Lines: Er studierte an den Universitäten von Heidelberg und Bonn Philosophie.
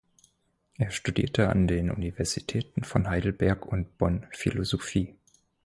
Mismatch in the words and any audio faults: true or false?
false